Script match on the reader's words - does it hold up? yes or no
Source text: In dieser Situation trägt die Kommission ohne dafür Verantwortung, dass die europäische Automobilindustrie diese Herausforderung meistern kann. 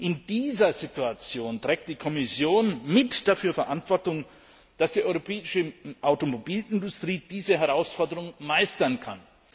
no